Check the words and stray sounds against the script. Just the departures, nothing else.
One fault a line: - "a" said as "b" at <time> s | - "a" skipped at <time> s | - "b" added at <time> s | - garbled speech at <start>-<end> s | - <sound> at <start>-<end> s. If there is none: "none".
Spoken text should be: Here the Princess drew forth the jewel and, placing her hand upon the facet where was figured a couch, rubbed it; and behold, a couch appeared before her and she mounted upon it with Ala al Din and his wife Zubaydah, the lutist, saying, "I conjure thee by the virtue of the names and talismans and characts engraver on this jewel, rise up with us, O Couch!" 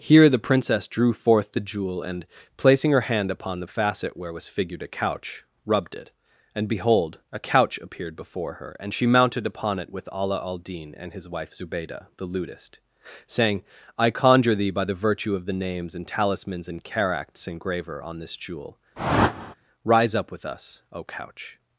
- whoosh at 19.0-19.5 s